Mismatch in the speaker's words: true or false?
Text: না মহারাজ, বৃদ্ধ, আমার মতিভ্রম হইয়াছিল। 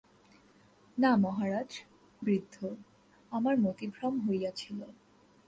false